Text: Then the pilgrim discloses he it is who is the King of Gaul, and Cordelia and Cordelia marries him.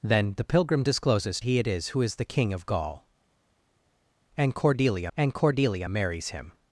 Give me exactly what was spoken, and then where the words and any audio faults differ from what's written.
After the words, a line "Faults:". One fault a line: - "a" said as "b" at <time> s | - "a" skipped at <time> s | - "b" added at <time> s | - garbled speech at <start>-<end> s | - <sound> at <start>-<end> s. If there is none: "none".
Then the pilgrim discloses he it is who is the King of Gaul, and Cordelia and Cordelia marries him.
Faults:
none